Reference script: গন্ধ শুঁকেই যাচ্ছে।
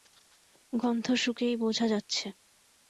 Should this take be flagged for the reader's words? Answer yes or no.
yes